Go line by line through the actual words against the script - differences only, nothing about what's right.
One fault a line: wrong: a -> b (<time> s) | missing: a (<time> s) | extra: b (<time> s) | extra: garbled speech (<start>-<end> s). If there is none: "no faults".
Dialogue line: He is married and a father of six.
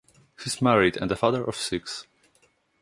no faults